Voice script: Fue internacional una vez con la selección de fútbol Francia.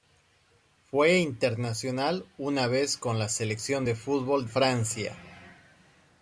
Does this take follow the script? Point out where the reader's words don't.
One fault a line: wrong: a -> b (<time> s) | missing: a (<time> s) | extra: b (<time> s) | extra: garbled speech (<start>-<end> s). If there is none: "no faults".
no faults